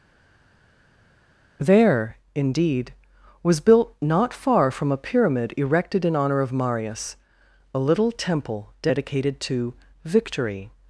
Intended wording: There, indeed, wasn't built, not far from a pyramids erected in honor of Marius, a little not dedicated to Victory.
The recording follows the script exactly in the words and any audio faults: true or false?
false